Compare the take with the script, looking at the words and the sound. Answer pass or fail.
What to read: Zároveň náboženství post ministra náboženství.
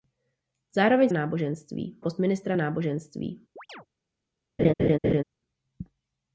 fail